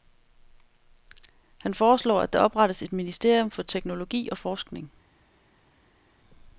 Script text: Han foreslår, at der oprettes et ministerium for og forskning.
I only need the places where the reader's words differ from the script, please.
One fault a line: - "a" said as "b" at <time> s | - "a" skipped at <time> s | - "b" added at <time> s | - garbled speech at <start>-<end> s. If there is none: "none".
- "teknologi" added at 3.6 s